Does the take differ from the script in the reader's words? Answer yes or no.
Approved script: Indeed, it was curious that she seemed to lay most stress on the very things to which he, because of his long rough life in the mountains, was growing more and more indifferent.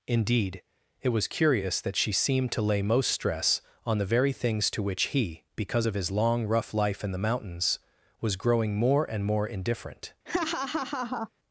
no